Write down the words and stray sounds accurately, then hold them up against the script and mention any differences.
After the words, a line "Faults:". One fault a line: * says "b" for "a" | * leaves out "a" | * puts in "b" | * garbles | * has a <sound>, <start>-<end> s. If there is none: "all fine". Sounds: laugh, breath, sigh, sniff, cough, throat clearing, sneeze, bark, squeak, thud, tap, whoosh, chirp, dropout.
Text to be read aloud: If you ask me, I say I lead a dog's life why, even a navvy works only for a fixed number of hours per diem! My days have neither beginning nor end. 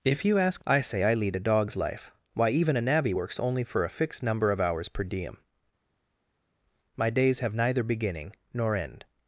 If you ask I say I lead a dog's life why, even a navvy works only for a fixed number of hours per diem! My days have neither beginning nor end.
Faults:
* leaves out "me"